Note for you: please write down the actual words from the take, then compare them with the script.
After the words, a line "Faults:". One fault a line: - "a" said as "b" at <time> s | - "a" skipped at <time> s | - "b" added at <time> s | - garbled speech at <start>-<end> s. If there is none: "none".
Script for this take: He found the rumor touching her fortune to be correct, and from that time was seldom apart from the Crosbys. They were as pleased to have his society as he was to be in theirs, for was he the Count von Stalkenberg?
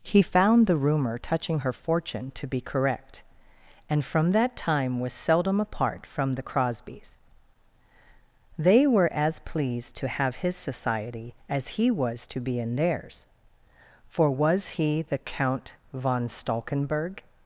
He found the rumor touching her fortune to be correct, and from that time was seldom apart from the Crosbys. They were as pleased to have his society as he was to be in theirs, for was he the Count von Stalkenberg?
Faults:
none